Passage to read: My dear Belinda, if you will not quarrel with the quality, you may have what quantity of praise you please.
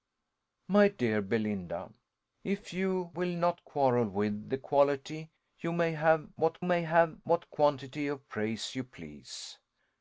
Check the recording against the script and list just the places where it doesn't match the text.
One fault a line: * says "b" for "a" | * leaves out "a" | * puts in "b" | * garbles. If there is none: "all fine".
* puts in "may have what"